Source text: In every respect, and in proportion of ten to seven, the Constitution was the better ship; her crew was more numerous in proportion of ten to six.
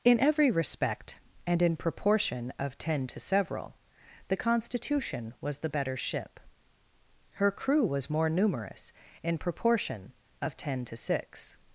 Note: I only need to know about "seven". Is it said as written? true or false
false